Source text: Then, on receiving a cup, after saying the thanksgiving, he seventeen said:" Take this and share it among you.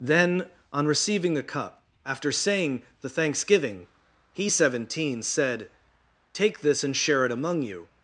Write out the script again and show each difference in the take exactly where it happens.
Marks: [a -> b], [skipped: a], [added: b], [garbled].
Then, on receiving [a -> the] cup, after saying the thanksgiving, he seventeen said:" Take this and share it among you.